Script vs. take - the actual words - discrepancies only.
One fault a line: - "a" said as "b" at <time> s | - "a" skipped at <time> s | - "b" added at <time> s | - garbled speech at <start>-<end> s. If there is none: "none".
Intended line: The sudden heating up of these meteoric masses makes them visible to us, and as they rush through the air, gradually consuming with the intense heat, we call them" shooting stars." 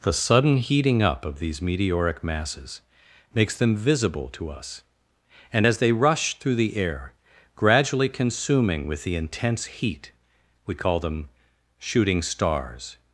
none